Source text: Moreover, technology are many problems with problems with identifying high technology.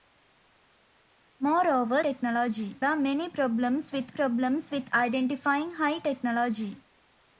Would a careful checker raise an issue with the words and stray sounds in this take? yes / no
no